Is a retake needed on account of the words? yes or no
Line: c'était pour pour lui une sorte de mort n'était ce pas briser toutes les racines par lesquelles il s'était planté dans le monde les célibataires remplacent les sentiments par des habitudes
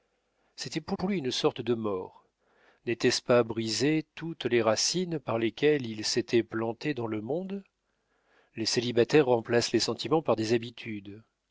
no